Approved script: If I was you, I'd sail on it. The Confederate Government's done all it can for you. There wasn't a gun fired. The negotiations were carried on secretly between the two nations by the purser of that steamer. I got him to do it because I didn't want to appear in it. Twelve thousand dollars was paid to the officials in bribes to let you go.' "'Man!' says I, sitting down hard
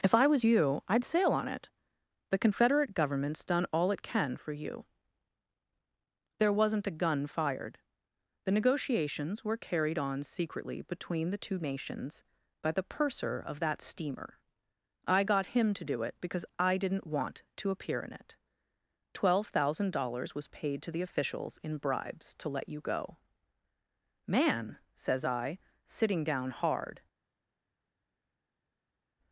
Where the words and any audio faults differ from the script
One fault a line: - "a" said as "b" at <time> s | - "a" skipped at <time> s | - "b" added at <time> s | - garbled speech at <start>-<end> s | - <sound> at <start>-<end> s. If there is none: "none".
none